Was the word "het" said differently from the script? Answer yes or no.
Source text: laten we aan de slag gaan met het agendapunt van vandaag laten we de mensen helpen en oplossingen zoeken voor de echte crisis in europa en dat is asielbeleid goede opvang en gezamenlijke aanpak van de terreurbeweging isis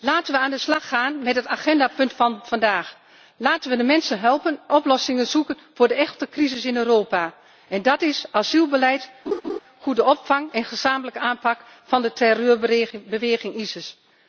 no